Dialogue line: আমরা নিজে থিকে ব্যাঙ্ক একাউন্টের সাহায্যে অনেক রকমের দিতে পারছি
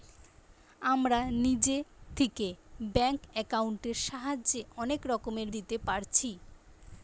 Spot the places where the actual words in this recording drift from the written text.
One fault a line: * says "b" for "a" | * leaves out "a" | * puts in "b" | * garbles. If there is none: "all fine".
all fine